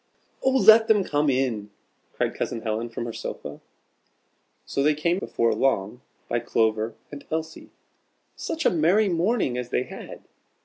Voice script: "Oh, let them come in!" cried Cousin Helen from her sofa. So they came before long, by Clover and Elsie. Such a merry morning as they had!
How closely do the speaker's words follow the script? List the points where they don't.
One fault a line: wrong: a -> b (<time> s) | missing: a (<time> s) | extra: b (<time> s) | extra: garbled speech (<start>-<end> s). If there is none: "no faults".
no faults